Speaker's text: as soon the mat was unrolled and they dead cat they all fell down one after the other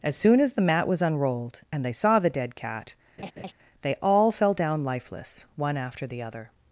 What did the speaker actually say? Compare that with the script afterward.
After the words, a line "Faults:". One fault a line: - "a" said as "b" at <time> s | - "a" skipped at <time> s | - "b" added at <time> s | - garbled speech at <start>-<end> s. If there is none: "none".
as soon as the mat was unrolled and they saw the dead cat they all fell down lifeless one after the other
Faults:
- "as" added at 0.4 s
- "saw the" added at 1.9 s
- "lifeless" added at 4.8 s